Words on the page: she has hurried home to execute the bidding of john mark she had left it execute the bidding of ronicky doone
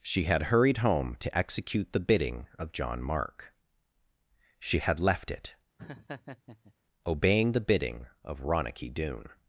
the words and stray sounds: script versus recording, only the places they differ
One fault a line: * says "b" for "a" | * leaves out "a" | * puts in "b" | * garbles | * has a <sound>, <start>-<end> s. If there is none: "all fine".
* says "had" for "has"
* has a laugh, 5.8-6.7 s
* says "obeying" for "execute"